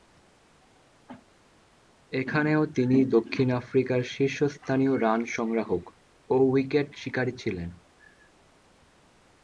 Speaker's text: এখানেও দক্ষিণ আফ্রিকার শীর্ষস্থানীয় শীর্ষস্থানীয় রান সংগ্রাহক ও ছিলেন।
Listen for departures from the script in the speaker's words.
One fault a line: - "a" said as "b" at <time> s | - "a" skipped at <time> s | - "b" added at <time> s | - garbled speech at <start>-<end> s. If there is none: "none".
- "তিনি" added at 2.7 s
- "শীর্ষস্থানীয়" skipped at 4.9 s
- "উইকেট শিকারী" added at 6.5 s